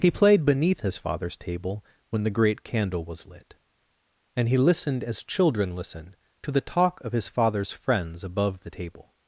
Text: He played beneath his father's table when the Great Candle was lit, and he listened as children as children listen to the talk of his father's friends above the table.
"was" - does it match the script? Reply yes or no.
yes